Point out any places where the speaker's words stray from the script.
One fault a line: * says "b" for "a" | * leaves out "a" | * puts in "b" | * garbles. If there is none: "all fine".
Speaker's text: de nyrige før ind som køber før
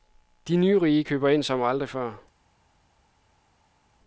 * says "køber" for "før"
* says "aldrig" for "køber"